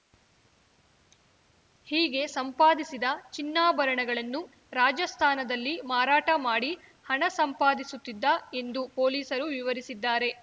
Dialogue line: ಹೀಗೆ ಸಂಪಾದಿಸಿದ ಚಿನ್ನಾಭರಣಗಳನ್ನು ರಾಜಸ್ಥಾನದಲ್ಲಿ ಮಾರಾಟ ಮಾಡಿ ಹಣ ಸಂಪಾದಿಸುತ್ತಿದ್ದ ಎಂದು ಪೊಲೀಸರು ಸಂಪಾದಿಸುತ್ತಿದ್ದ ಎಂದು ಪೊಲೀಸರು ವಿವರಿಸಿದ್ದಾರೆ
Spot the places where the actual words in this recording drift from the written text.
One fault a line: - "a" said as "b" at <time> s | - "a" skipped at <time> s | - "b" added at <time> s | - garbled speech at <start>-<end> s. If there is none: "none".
- "ಸಂಪಾದಿಸುತ್ತಿದ್ದ ಎಂದು ಪೊಲೀಸರು" skipped at 9.5 s